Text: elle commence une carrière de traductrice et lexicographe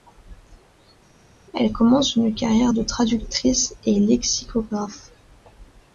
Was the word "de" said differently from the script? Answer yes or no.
no